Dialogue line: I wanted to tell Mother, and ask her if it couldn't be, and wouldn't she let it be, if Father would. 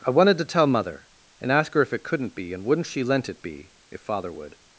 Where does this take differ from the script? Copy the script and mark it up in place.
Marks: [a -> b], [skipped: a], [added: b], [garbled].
I wanted to tell Mother, and ask her if it couldn't be, and wouldn't she [let -> lent] it be, if Father would.